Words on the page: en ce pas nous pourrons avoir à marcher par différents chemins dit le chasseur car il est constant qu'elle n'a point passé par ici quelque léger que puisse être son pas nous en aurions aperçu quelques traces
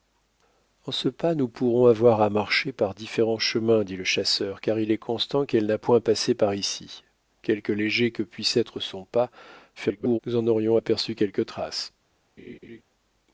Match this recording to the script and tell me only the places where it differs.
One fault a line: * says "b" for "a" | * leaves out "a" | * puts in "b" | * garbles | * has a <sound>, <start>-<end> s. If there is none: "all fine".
* garbles
* has a laugh, 12.4-12.8 s